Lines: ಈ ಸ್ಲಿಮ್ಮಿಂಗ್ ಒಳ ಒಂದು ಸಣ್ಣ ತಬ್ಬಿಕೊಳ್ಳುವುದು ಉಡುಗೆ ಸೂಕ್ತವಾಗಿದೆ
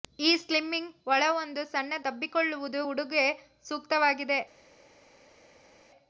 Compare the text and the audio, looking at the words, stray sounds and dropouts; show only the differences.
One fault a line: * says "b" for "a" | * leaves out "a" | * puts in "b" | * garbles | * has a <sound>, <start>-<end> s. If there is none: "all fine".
all fine